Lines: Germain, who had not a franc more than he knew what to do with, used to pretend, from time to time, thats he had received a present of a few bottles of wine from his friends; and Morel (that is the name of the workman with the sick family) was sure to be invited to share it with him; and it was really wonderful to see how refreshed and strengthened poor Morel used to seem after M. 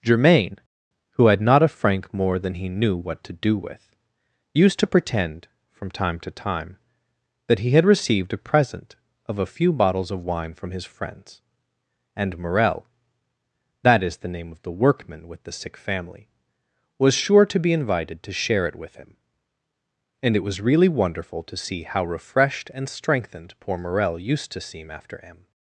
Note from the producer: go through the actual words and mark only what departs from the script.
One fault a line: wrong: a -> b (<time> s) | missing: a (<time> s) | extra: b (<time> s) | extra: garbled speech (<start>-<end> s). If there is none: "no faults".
wrong: thats -> that (7.5 s)